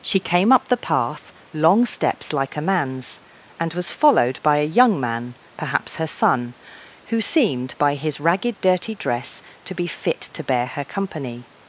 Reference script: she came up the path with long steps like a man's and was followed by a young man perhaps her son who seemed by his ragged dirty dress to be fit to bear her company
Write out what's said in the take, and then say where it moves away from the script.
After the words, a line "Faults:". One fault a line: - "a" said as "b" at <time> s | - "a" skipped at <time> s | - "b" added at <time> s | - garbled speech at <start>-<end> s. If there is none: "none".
she came up the path long steps like a man's and was followed by a young man perhaps her son who seemed by his ragged dirty dress to be fit to bear her company
Faults:
- "with" skipped at 1.3 s